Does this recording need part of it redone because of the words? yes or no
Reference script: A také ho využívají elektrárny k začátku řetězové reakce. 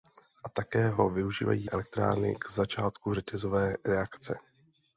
no